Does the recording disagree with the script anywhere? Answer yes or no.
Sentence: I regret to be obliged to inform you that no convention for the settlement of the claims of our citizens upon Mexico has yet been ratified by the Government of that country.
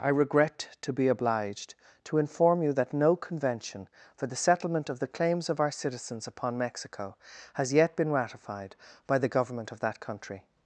no